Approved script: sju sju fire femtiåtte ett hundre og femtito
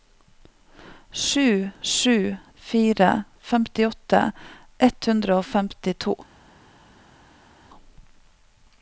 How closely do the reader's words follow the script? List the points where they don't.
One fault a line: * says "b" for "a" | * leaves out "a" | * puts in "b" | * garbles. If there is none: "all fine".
all fine